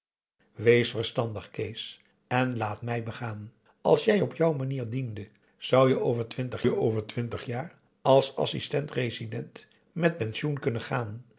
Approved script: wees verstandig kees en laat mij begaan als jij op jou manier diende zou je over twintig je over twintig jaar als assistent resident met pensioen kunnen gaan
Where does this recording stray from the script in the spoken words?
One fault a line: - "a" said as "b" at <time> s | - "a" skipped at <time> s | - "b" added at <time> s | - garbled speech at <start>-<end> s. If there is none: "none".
none